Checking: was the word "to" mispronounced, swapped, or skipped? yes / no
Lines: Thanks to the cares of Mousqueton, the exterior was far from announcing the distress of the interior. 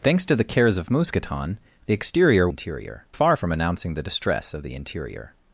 no